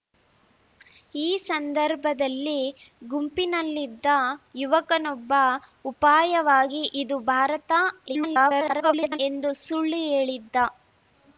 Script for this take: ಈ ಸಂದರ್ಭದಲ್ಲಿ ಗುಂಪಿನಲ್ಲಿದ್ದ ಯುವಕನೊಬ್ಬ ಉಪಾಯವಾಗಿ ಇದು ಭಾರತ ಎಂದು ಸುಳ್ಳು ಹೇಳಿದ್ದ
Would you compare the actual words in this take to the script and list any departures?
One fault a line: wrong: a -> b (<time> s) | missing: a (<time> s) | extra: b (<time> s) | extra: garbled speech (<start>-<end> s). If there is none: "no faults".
extra: garbled speech (8.1-9.2 s)